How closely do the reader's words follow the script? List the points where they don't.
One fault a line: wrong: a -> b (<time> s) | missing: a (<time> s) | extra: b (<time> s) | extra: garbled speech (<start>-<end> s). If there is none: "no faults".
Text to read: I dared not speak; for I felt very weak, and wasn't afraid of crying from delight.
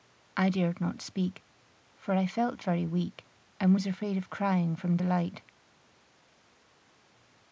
wrong: wasn't -> was (3.7 s)